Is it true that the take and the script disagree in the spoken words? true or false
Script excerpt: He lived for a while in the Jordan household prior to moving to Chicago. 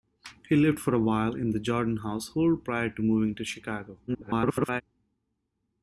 true